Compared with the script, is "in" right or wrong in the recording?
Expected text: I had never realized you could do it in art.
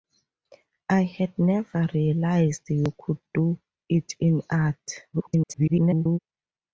right